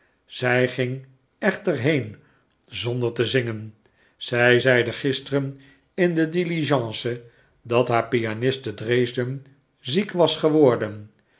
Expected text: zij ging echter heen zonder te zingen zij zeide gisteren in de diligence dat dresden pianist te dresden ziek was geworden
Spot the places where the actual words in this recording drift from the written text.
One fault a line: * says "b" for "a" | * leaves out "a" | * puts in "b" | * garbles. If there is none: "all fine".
* says "haar" for "dresden"